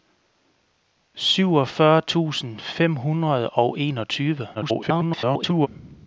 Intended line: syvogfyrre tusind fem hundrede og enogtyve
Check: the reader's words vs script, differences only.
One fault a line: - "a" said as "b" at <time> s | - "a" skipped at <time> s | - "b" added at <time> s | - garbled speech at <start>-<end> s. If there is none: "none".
- garbled speech at 4.5-5.7 s